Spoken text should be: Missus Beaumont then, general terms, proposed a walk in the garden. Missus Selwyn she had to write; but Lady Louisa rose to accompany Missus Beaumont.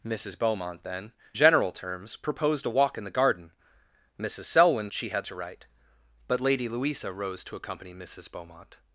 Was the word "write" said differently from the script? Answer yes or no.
no